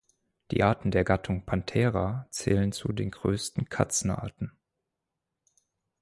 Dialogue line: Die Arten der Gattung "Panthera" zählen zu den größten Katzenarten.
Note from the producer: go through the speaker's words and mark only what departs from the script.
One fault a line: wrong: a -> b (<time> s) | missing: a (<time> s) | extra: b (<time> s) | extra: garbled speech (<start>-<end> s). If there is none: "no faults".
no faults